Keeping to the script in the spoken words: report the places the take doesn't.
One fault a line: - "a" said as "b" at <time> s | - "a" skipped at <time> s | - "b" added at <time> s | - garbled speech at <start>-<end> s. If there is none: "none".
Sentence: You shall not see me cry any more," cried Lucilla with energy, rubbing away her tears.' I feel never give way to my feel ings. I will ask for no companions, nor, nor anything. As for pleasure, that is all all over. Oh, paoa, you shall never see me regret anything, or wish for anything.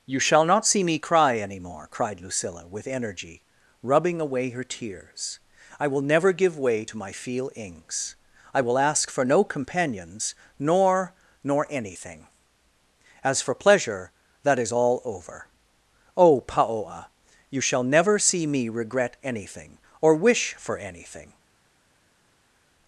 - "feel" said as "will" at 5.9 s
- "all" skipped at 15.0 s